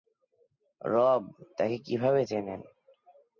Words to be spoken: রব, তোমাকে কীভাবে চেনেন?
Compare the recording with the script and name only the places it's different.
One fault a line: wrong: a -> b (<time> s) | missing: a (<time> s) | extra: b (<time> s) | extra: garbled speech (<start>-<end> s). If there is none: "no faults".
wrong: তোমাকে -> তাকে (1.6 s)